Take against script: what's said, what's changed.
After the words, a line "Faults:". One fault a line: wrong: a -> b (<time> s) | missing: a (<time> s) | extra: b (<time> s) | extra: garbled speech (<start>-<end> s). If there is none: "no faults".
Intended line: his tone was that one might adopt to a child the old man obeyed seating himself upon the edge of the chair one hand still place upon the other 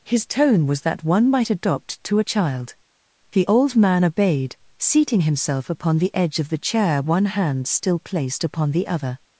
his tone was that one might adopt to a child the old man obeyed seating himself upon the edge of the chair one hand still placed upon the other
Faults:
wrong: place -> placed (8.0 s)